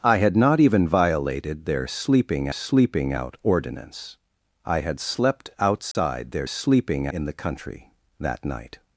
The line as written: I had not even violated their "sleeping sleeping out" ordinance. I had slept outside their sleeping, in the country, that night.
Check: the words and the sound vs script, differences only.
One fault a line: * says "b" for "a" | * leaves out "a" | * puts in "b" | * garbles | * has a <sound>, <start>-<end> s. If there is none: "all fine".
* has a dropout, 5.9-5.9 s